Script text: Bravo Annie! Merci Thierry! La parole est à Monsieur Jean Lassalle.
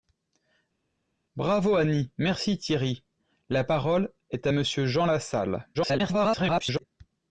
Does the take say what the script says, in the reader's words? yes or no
no